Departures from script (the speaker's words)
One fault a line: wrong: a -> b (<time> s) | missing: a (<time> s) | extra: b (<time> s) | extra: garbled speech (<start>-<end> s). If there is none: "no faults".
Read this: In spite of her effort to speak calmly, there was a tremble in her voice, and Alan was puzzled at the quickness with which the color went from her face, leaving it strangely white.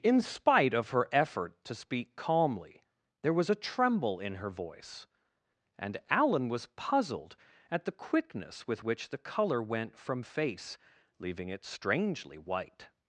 missing: her (10.2 s)